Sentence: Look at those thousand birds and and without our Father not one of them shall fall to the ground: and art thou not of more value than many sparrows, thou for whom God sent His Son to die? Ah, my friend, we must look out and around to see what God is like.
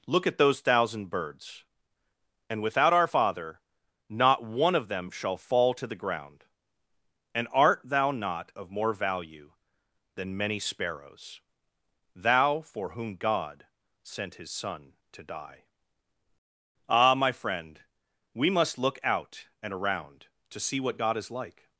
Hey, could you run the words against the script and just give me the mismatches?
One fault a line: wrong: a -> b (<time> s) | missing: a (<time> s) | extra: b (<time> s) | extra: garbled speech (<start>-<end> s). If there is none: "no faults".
missing: and (2.6 s)